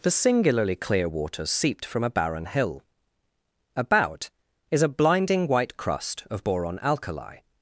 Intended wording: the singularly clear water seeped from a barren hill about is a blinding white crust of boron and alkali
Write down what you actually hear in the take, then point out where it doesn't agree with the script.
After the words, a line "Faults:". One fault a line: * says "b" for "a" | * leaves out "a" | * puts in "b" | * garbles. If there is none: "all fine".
the singularly clear water seeped from a barren hill about is a blinding white crust of boron alkali
Faults:
* leaves out "and"